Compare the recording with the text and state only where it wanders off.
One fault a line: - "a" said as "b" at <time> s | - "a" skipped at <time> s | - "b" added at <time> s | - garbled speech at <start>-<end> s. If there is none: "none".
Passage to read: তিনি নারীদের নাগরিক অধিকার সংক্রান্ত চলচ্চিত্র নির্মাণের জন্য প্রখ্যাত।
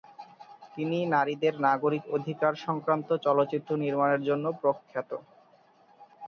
none